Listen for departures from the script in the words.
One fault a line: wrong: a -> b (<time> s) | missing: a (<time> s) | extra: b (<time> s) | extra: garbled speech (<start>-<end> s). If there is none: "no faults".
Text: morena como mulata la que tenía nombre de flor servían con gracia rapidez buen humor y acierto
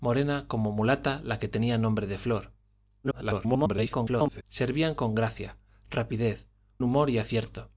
extra: garbled speech (3.0-4.4 s)
missing: buen (6.5 s)